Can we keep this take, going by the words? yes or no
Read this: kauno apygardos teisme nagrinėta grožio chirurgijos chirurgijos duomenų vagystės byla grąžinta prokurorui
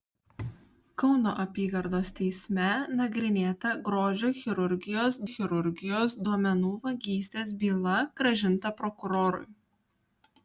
yes